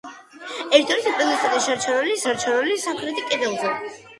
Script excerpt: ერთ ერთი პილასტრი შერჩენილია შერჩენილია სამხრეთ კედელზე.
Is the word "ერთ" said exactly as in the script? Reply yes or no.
yes